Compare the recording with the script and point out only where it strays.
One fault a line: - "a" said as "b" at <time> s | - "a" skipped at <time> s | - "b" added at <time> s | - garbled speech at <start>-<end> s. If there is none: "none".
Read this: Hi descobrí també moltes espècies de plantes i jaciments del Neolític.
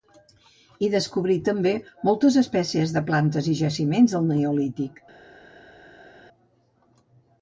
none